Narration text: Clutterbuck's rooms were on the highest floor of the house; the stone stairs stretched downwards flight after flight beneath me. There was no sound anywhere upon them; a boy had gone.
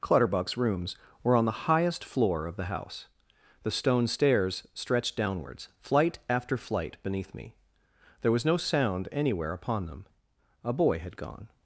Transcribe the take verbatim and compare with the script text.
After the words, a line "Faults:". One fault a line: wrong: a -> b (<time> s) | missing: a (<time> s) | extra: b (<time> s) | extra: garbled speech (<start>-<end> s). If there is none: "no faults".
Clutterbuck's rooms were on the highest floor of the house; the stone stairs stretched downwards flight after flight beneath me. There was no sound anywhere upon them; a boy had gone.
Faults:
no faults